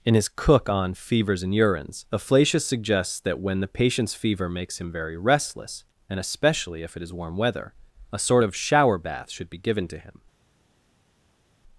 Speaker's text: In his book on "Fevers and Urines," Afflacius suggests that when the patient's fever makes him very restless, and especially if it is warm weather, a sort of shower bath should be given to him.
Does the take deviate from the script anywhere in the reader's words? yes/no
yes